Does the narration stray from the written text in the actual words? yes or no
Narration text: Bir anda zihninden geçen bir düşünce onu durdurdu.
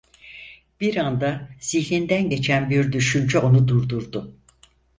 no